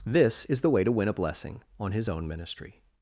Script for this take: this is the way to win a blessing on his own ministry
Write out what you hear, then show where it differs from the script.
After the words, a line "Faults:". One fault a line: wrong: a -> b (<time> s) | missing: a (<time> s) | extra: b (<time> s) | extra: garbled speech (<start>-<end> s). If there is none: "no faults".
this is the way to win a blessing on his own ministry
Faults:
no faults